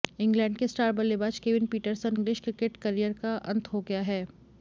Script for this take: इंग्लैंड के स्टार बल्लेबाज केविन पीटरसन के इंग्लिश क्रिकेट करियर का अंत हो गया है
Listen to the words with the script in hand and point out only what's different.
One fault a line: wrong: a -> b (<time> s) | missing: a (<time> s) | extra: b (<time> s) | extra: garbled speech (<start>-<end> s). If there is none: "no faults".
missing: के (2.1 s)